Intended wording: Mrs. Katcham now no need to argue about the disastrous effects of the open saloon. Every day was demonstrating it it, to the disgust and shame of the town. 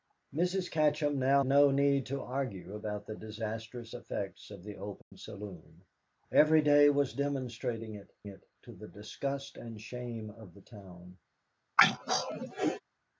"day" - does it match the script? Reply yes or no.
yes